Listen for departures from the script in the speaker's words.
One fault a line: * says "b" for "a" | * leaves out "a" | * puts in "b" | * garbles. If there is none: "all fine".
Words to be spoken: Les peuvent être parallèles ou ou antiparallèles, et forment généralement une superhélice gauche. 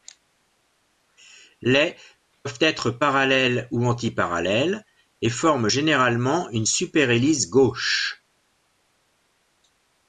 * leaves out "ou"